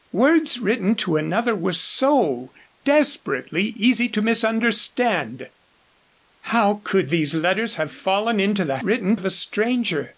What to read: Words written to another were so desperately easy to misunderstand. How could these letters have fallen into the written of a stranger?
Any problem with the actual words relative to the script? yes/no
no